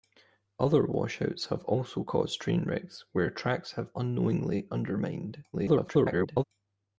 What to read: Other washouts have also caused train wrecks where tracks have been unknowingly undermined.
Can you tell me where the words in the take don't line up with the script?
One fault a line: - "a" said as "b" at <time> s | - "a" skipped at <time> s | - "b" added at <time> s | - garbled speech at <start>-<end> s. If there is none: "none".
- "been" skipped at 3.9 s
- garbled speech at 5.5-6.4 s